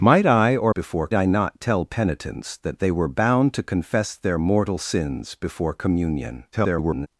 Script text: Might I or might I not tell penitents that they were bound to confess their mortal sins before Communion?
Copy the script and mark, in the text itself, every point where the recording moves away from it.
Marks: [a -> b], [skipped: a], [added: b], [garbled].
Might I or [might -> before] I not tell penitents that they were bound to confess their mortal sins before Communion? [garbled]